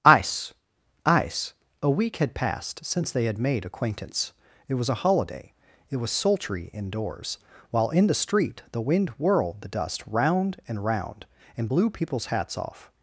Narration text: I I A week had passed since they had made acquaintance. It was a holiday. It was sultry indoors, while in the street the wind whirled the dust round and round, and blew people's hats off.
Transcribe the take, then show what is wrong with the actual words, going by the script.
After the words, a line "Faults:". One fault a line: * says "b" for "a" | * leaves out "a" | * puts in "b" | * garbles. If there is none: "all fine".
ice ice A week had passed since they had made acquaintance. It was a holiday. It was sultry indoors, while in the street the wind whirled the dust round and round, and blew people's hats off.
Faults:
* says "ice ice" for "I I"